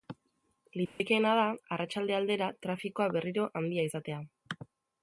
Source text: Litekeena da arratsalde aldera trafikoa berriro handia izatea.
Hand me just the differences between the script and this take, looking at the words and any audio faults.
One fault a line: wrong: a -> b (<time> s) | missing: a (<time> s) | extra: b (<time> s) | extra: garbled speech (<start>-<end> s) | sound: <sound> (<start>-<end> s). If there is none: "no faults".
sound: dropout (0.9-1.0 s)